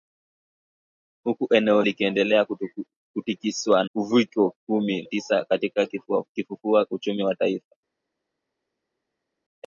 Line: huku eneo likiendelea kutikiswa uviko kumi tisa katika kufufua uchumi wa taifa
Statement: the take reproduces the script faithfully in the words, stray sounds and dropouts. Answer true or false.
true